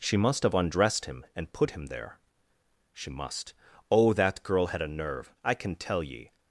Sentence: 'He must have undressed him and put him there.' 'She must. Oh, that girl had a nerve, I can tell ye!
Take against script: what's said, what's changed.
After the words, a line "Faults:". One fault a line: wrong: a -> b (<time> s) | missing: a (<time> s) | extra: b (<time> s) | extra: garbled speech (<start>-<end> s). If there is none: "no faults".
'She must have undressed him and put him there.' 'She must. Oh, that girl had a nerve, I can tell ye!
Faults:
wrong: He -> She (0.0 s)